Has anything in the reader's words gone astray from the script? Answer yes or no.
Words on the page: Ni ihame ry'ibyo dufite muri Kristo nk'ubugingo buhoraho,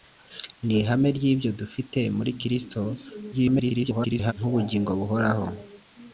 yes